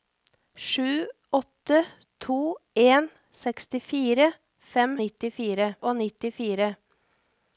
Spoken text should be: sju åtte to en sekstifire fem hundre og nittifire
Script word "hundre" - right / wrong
wrong